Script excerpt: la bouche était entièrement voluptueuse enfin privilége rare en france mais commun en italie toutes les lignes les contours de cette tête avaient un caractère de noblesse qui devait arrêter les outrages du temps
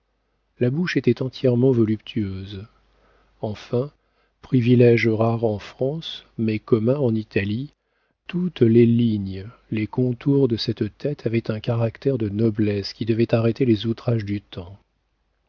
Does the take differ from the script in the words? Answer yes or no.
no